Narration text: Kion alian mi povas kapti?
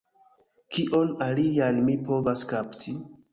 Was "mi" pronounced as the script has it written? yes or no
yes